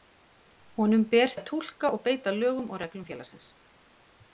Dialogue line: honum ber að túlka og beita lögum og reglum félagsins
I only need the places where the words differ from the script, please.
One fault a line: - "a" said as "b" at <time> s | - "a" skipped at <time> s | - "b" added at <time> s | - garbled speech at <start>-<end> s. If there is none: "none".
none